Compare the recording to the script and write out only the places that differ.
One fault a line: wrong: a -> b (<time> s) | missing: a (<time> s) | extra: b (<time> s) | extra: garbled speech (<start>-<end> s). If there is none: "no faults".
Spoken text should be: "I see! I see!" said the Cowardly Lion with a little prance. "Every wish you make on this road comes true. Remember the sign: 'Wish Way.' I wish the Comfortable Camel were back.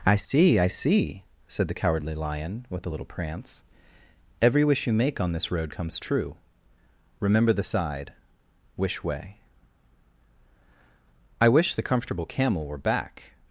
wrong: sign -> side (7.6 s)